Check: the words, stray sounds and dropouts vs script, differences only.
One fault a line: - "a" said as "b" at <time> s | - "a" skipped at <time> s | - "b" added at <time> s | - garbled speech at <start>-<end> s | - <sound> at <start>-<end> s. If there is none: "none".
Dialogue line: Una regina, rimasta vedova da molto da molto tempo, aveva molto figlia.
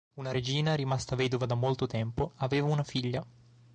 - "da molto" skipped at 1.8 s
- "molto" said as "una" at 2.7 s